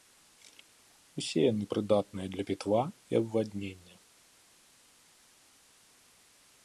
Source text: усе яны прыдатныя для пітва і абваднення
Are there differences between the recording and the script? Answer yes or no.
no